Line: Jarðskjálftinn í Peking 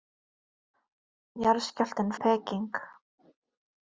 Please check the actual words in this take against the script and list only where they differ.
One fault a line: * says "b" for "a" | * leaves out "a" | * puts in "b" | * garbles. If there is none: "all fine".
all fine